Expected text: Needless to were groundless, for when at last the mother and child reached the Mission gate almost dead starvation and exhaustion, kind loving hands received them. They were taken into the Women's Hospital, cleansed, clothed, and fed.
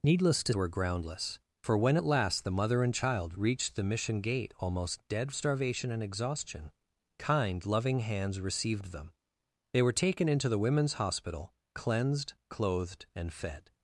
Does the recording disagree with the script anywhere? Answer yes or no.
no